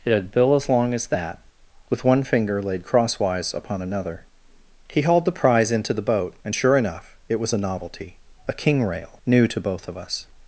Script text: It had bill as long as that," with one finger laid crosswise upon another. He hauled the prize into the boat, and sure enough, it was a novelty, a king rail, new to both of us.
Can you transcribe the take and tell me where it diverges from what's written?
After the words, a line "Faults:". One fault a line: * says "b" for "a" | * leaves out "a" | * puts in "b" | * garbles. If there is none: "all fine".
It had bill as long as that," with one finger laid crosswise upon another. He hauled the prize into the boat, and sure enough, it was a novelty, a king rail, new to both of us.
Faults:
all fine